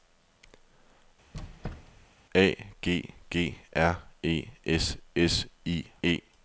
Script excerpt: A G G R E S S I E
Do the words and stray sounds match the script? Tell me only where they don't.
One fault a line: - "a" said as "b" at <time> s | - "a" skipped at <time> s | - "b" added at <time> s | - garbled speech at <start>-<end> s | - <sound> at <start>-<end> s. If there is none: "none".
- squeak at 1.3-2.1 s